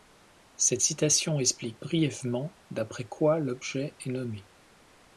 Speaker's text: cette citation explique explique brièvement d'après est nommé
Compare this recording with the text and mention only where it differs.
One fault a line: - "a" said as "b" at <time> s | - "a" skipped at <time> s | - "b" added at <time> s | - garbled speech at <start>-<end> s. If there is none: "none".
- "explique" skipped at 1.8 s
- "quoi l'objet" added at 3.1 s